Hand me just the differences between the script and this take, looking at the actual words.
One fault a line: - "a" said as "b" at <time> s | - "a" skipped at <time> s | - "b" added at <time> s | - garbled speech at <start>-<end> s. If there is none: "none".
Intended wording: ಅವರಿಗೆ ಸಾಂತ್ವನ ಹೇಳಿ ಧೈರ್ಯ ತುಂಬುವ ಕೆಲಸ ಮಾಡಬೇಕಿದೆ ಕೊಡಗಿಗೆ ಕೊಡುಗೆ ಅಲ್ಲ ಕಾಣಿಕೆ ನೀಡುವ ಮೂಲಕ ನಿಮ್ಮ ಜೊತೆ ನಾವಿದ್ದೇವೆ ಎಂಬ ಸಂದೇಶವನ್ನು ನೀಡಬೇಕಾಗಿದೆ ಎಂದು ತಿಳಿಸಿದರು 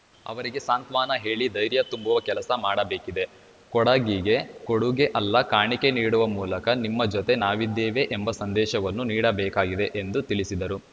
none